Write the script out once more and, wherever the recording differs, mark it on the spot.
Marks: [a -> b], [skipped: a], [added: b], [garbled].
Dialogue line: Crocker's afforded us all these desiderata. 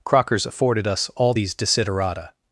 Crocker's afforded us all these desiderata.